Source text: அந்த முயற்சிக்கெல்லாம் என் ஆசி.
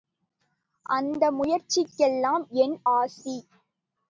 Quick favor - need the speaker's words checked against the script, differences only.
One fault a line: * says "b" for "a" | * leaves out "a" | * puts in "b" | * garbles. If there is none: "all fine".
all fine